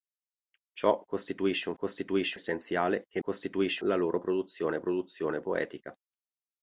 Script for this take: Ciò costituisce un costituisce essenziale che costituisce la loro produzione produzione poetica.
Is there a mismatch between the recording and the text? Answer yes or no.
no